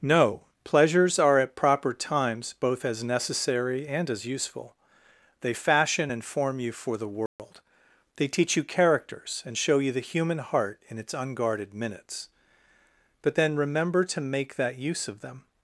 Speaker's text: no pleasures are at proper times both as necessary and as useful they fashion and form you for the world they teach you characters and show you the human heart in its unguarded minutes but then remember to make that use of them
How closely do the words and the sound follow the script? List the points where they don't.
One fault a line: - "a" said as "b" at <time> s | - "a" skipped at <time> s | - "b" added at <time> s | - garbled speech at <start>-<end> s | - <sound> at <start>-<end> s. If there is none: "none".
- dropout at 7.3-7.4 s